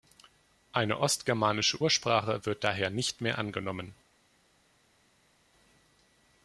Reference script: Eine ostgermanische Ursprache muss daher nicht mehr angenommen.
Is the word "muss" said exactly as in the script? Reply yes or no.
no